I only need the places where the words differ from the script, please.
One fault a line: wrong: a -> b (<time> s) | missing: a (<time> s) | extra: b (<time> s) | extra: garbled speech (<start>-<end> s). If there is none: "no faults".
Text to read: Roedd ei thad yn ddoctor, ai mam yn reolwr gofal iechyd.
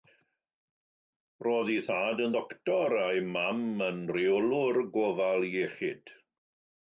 no faults